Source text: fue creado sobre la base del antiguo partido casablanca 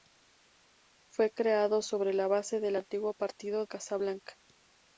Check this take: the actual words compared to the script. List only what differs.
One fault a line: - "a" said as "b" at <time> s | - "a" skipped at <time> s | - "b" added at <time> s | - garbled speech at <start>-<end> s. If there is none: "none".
none